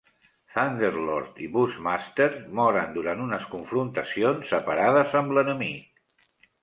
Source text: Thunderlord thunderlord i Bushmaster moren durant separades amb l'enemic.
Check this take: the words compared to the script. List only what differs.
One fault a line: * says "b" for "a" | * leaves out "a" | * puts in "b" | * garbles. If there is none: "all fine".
* leaves out "thunderlord"
* puts in "unes confrontacions"